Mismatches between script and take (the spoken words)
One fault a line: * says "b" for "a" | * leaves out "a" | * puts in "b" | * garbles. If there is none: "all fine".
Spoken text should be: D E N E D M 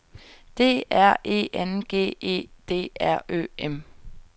* puts in "R"
* puts in "G"
* puts in "R Ø"